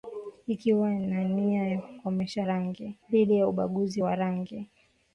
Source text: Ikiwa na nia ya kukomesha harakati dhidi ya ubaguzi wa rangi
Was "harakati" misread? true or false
true